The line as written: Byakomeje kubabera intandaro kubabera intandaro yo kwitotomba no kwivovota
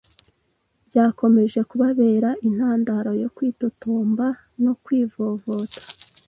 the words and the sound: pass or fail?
fail